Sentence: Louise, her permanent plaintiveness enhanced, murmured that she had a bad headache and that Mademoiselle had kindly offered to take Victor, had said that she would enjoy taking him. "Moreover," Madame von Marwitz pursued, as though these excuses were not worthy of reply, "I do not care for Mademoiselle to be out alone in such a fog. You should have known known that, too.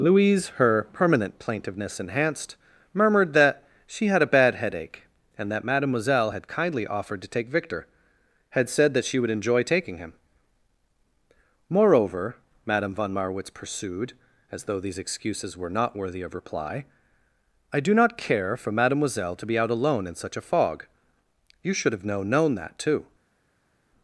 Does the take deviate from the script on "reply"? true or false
false